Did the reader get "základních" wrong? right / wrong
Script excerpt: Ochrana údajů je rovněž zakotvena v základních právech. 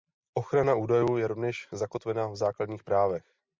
right